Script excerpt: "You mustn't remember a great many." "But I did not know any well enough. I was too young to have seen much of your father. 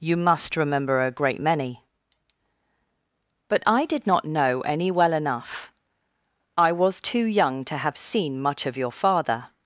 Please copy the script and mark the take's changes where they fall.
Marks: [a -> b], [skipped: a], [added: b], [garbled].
"You [mustn't -> must] remember a great many." "But I did not know any well enough. I was too young to have seen much of your father.